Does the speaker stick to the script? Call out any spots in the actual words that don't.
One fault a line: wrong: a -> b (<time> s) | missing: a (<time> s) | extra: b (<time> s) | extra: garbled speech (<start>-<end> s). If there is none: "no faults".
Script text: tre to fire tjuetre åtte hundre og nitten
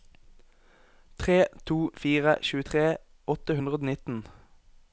no faults